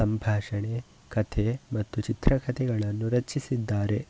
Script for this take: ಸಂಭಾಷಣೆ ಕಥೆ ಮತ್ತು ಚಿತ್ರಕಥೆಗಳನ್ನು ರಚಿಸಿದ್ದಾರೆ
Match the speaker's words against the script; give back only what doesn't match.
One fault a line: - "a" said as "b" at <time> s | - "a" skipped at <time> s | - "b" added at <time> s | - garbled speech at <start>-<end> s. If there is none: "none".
none